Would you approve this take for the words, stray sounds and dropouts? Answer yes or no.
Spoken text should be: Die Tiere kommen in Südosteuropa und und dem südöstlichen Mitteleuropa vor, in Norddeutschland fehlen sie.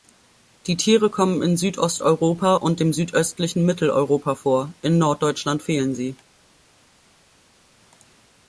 no